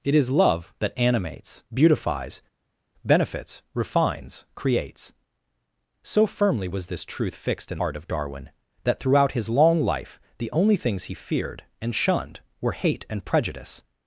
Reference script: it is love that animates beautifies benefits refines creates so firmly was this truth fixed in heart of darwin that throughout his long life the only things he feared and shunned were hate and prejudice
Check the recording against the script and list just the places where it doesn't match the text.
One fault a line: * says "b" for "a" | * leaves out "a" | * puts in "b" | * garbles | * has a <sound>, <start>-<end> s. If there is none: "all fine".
all fine